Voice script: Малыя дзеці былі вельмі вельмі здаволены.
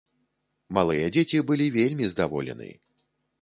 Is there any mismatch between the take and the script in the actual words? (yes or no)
yes